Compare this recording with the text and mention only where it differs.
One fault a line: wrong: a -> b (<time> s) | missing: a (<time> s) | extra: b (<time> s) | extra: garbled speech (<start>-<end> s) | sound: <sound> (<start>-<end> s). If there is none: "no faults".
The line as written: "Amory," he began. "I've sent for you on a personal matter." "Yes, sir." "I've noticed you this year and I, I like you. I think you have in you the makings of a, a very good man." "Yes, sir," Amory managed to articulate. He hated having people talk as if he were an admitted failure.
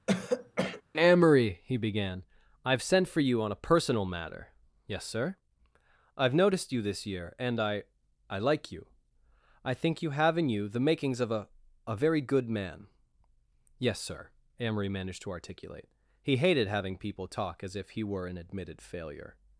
sound: throat clearing (0.1-0.8 s)